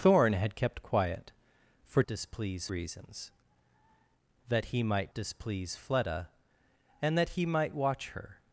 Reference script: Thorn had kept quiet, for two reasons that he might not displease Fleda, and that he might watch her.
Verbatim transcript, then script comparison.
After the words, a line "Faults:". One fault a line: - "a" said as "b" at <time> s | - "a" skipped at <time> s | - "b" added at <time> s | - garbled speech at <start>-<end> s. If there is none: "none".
Thorn had kept quiet, for displease reasons that he might displease Fleda, and that he might watch her.
Faults:
- "two" said as "displease" at 2.0 s
- "not" skipped at 5.1 s